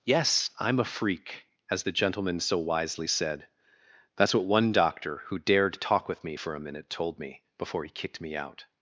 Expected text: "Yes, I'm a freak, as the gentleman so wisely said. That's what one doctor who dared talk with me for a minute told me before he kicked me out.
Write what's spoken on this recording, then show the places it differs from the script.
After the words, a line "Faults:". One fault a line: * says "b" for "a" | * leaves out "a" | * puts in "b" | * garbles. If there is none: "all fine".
"Yes, I'm a freak, as the gentleman so wisely said. That's what one doctor who dared talk with me for a minute told me before he kicked me out.
Faults:
all fine